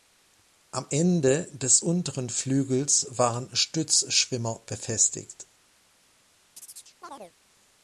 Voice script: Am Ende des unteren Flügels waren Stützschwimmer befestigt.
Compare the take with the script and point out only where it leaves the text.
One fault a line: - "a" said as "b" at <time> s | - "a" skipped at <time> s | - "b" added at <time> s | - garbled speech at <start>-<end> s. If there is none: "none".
none